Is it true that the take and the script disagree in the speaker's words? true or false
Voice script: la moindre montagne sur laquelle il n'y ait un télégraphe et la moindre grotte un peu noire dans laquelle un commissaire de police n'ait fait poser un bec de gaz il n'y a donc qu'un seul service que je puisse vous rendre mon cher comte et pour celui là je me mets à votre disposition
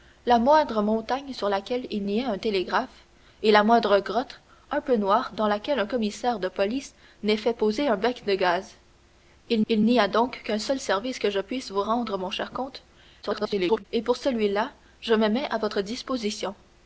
true